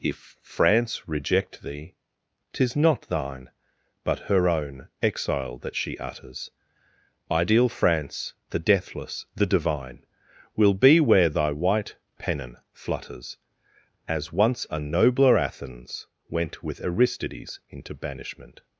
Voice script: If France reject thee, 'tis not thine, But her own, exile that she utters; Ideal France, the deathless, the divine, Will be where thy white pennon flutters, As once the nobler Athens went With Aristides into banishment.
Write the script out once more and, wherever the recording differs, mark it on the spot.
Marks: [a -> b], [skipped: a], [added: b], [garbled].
If France reject thee, 'tis not thine, But her own, exile that she utters; Ideal France, the deathless, the divine, Will be where thy white pennon flutters, As once [the -> a] nobler Athens went With Aristides into banishment.